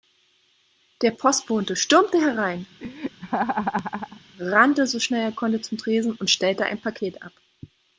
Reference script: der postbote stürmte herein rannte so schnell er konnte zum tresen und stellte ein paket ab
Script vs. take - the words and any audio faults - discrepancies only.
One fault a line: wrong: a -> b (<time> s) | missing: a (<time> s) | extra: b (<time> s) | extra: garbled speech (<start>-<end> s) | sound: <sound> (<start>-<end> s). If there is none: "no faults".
sound: laugh (2.8-4.2 s)